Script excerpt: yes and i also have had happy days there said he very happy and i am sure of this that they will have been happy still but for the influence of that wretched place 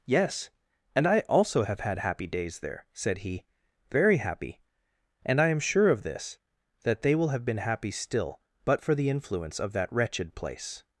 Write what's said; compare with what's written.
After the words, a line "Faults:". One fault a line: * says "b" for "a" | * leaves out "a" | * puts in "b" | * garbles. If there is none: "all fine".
yes and i also have had happy days there said he very happy and i am sure of this that they will have been happy still but for the influence of that wretched place
Faults:
all fine